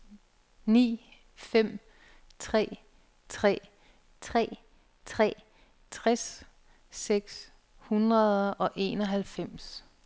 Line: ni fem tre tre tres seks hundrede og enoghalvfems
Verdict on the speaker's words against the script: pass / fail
fail